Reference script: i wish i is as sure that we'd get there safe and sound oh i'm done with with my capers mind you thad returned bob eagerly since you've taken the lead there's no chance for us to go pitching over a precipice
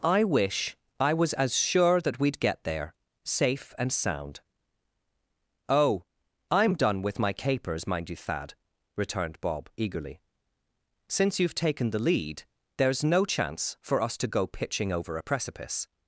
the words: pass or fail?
fail